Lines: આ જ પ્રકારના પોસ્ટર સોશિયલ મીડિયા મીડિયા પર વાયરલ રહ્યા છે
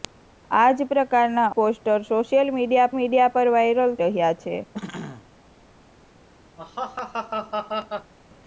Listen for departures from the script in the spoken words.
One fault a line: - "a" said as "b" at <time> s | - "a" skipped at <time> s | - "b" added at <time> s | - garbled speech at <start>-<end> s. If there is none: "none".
none